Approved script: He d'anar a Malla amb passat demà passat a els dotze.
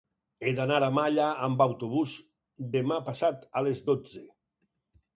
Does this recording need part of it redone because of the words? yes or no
yes